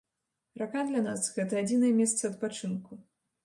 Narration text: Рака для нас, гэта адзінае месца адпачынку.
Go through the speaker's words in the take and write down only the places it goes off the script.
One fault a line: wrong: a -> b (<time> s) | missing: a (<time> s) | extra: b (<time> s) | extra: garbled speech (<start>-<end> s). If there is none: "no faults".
no faults